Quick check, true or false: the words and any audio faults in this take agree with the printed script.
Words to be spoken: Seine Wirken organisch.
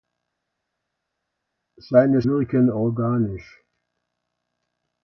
true